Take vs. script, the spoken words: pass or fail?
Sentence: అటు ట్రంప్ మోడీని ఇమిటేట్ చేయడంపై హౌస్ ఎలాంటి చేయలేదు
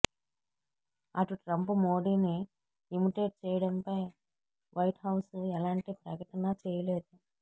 fail